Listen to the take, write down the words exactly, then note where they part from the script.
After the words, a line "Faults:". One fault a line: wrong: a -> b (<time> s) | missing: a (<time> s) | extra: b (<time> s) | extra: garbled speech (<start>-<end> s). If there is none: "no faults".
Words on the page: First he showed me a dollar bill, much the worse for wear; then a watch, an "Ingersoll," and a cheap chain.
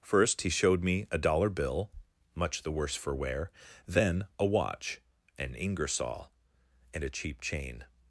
First he showed me a dollar bill, much the worse for wear; then a watch, an "Ingersoll," and a cheap chain.
Faults:
no faults